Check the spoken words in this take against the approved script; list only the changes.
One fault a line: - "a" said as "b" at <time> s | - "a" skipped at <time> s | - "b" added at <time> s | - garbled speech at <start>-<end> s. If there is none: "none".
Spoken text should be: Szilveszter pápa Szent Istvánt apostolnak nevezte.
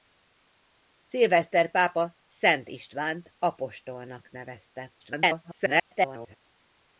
- garbled speech at 5.0-6.4 s